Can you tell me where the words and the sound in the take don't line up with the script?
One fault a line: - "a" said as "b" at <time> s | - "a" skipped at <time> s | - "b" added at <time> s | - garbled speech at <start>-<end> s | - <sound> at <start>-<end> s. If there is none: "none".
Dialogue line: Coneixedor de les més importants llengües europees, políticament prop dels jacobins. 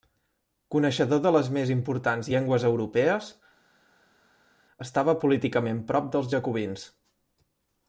- "estava" added at 4.9 s